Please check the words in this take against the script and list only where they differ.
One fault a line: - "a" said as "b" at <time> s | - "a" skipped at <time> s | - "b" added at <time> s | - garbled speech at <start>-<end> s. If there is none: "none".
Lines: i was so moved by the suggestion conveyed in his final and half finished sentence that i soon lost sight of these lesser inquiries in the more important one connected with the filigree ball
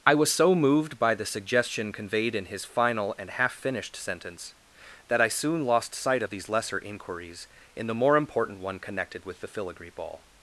none